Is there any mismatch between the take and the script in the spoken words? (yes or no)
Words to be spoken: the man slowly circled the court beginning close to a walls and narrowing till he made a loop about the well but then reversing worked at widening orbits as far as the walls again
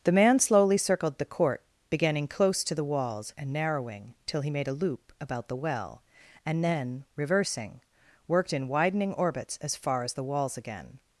yes